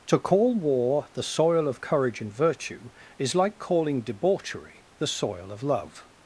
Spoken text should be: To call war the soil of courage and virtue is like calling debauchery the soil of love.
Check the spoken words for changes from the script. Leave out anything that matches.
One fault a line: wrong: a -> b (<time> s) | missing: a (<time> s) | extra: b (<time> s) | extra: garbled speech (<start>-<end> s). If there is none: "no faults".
no faults